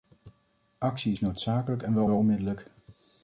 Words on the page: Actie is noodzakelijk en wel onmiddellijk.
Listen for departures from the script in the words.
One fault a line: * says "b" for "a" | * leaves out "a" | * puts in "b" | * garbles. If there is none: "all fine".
* puts in "wel"